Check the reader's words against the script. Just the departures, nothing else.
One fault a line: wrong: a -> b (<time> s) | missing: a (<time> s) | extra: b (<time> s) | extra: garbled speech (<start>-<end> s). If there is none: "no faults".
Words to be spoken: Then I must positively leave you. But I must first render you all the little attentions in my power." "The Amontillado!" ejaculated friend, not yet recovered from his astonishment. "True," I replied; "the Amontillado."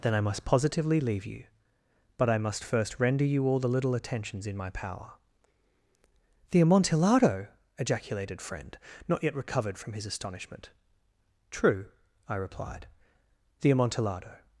no faults